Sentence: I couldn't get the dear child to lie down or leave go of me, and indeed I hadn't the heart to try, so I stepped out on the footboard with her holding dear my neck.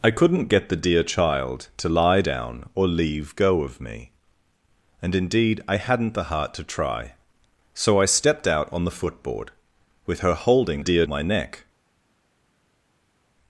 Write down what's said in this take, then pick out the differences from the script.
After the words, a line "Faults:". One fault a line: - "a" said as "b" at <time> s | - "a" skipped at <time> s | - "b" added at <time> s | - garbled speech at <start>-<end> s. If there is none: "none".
I couldn't get the dear child to lie down or leave go of me, and indeed I hadn't the heart to try, so I stepped out on the footboard with her holding dear my neck.
Faults:
none